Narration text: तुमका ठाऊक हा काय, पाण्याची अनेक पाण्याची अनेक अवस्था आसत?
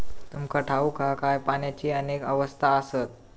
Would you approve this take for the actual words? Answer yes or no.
no